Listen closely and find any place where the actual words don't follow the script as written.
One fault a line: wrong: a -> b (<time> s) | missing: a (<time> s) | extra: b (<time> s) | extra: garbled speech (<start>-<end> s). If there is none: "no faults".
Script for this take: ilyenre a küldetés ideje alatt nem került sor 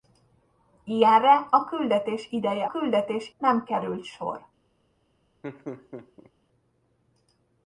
wrong: alatt -> küldetés (2.7 s)